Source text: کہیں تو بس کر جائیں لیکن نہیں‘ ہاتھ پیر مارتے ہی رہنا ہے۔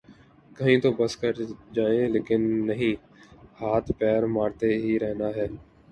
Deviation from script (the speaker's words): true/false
false